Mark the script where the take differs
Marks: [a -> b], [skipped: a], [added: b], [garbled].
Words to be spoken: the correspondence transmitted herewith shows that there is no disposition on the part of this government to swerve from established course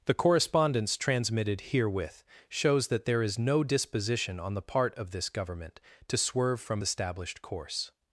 the correspondence transmitted herewith shows that there is no disposition on the part of this government to swerve from established course